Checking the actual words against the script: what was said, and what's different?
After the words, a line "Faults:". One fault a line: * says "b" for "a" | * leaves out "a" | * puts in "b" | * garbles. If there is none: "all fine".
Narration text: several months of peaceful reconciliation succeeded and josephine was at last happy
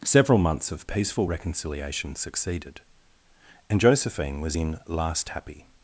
several months of peaceful reconciliation succeeded and josephine was in last happy
Faults:
* says "in" for "at"